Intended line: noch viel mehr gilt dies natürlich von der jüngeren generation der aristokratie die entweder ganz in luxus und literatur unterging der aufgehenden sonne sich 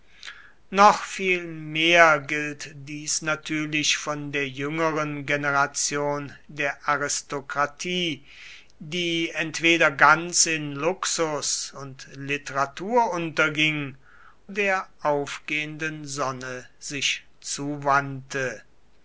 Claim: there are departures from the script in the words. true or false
false